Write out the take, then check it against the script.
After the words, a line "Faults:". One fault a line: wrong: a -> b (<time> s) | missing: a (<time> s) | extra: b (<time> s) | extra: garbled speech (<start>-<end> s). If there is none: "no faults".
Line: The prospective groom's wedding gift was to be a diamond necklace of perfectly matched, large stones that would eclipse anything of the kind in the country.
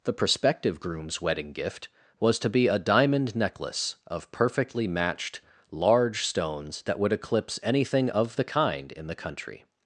The prospective groom's wedding gift was to be a diamond necklace of perfectly matched, large stones that would eclipse anything of the kind in the country.
Faults:
no faults